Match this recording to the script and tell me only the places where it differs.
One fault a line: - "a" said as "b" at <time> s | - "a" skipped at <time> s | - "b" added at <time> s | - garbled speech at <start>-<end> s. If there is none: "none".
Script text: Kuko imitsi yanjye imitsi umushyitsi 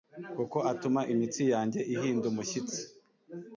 - "atuma" added at 0.7 s
- "imitsi" said as "ihinda" at 1.9 s